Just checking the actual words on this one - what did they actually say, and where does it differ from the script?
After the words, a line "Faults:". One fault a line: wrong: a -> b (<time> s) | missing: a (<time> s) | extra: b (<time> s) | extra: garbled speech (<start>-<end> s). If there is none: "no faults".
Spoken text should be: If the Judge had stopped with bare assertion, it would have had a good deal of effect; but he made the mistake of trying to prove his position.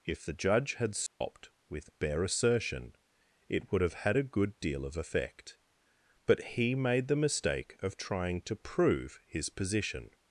If the Judge had stopped with bare assertion, it would have had a good deal of effect; but he made the mistake of trying to prove his position.
Faults:
no faults